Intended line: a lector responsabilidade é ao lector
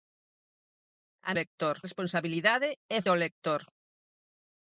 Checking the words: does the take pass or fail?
pass